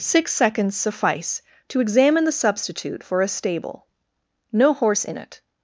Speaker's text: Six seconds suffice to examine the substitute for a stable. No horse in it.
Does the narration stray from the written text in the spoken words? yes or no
no